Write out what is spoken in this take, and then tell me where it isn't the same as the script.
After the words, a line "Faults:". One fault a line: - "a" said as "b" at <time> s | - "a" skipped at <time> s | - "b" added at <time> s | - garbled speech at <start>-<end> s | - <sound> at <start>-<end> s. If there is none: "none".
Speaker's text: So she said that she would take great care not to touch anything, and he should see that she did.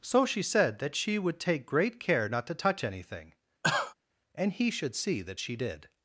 So she said that she would take great care not to touch anything, and he should see that she did.
Faults:
- cough at 3.6-3.9 s